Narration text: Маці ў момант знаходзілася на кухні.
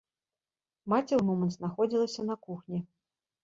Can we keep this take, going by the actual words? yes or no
yes